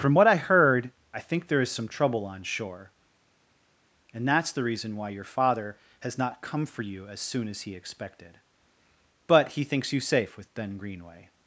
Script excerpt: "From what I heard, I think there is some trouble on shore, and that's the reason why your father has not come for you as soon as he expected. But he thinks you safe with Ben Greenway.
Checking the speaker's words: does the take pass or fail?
pass